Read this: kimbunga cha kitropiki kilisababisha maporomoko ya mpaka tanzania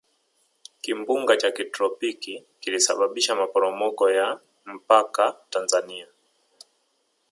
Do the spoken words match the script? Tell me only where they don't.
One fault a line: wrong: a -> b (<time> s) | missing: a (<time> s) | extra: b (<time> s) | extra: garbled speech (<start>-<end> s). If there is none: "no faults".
no faults